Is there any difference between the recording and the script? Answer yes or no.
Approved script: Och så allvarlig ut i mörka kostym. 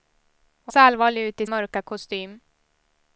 no